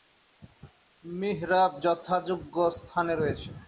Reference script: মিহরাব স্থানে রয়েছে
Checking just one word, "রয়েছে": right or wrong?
right